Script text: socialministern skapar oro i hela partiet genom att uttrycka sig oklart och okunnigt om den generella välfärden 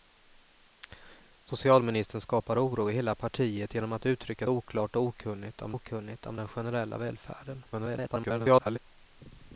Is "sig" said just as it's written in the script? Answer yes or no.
no